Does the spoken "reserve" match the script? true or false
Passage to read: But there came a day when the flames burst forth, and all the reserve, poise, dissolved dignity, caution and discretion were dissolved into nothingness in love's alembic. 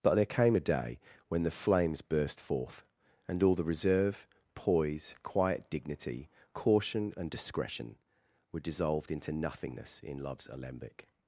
true